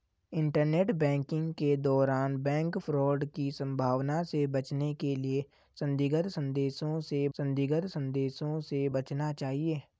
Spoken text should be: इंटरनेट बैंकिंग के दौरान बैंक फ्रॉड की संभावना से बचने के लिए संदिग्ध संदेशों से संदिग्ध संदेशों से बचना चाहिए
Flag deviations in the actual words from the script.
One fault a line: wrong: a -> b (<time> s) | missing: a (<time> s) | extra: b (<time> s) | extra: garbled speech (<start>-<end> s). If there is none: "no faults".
no faults